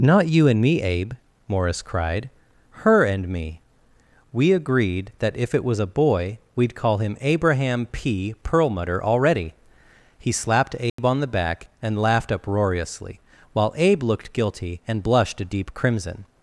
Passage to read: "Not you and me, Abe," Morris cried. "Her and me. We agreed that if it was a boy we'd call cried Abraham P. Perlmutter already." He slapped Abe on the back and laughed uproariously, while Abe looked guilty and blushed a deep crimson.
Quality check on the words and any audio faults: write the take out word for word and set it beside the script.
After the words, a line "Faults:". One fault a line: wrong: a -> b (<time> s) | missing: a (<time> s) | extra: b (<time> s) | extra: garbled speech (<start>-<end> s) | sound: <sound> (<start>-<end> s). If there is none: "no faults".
"Not you and me, Abe," Morris cried. "Her and me. We agreed that if it was a boy we'd call him Abraham P. Perlmutter already." He slapped Abe on the back and laughed uproariously, while Abe looked guilty and blushed a deep crimson.
Faults:
wrong: cried -> him (7.0 s)
sound: dropout (10.9-11.0 s)